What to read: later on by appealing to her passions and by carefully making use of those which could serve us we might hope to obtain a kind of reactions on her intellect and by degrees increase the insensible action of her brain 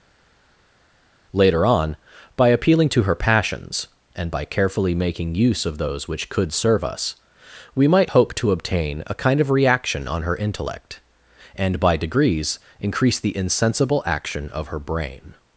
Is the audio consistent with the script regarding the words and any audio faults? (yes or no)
no